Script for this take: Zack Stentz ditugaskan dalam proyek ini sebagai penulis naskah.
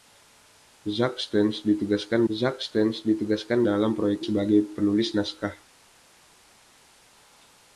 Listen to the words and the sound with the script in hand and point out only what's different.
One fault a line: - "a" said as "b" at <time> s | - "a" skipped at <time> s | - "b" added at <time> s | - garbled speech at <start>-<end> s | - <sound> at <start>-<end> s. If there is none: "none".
- "zack Stentz ditugaskan" added at 2.3 s
- "ini" skipped at 4.3 s